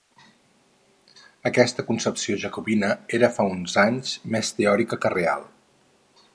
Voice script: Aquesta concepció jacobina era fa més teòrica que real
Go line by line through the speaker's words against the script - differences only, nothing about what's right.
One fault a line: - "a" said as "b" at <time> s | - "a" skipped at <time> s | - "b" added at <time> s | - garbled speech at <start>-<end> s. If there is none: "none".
- "uns anys" added at 3.6 s